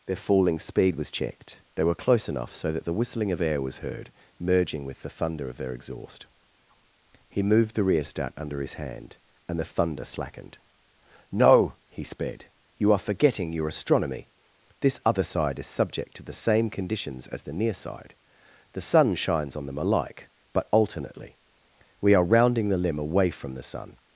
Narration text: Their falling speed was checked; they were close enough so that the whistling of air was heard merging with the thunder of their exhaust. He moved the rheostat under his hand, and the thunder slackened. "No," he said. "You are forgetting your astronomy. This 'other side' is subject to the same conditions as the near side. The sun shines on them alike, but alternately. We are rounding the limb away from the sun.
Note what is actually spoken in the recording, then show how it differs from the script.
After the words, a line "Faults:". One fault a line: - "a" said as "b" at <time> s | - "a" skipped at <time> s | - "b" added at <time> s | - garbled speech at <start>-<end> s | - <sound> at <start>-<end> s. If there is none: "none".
Their falling speed was checked; they were close enough so that the whistling of air was heard merging with the thunder of their exhaust. He moved the rheostat under his hand, and the thunder slackened. "No," he sped. "You are forgetting your astronomy. This 'other side' is subject to the same conditions as the near side. The sun shines on them alike, but alternately. We are rounding the limb away from the sun.
Faults:
- "said" said as "sped" at 12.0 s